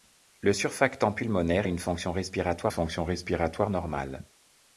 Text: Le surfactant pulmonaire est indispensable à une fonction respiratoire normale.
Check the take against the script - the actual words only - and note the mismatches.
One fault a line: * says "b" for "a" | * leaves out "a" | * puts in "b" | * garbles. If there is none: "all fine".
* says "à une fonction respiratoire" for "est indispensable à une"